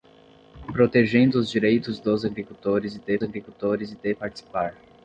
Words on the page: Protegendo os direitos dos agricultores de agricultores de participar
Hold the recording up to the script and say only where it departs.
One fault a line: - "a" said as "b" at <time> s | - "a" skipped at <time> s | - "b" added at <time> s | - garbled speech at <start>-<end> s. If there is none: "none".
none